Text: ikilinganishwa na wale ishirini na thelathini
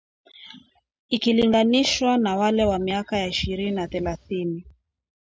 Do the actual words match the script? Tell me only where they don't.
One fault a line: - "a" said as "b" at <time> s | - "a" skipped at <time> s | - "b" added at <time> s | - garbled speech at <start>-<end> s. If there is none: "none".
- "wa miaka ya" added at 2.6 s